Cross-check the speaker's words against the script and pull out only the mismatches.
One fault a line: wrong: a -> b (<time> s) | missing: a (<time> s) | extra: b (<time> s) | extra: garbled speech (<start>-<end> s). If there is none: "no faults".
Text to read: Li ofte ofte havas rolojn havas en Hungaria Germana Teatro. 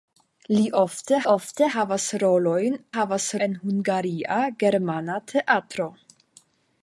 no faults